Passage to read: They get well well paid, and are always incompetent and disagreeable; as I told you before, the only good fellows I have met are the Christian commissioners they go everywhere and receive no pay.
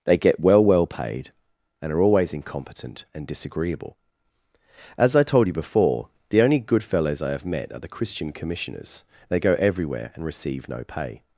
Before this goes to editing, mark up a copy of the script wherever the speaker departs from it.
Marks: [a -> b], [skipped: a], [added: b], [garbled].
They get well well paid, and are always incompetent and disagreeable; as I told you before, the only good fellows I have met are the Christian commissioners they go everywhere and receive no pay.